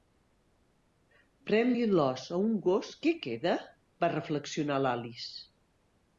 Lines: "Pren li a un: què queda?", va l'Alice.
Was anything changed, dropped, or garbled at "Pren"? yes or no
no